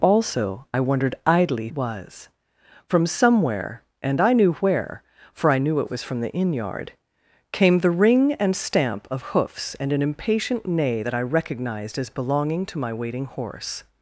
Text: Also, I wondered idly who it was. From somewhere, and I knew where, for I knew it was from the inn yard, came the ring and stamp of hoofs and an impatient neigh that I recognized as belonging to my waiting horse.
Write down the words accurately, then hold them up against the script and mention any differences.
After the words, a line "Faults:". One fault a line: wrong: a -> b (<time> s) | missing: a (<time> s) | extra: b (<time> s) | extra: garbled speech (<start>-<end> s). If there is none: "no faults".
Also, I wondered idly was. From somewhere, and I knew where, for I knew it was from the inn yard, came the ring and stamp of hoofs and an impatient neigh that I recognized as belonging to my waiting horse.
Faults:
missing: who it (1.7 s)